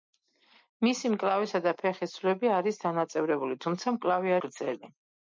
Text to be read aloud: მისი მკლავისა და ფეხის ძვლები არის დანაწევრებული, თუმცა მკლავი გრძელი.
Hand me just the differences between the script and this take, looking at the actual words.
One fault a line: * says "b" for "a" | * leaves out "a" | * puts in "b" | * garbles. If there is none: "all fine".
all fine